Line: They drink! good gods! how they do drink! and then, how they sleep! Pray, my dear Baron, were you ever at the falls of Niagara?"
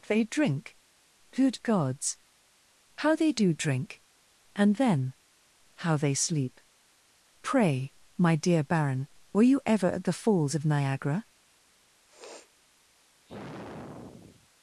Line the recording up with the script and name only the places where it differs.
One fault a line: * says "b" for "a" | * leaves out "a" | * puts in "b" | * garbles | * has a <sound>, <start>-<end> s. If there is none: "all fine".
* has a sniff, 12.1-12.5 s
* has a sigh, 13.3-14.5 s